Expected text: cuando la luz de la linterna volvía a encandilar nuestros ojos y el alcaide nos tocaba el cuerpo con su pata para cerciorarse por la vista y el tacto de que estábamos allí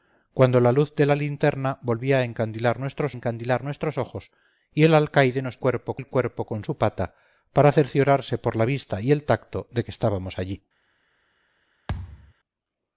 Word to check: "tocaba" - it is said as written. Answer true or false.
false